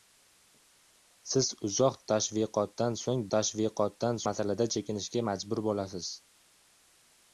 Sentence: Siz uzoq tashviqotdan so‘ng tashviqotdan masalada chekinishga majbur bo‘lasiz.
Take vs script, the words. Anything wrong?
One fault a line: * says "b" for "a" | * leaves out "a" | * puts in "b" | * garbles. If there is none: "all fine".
all fine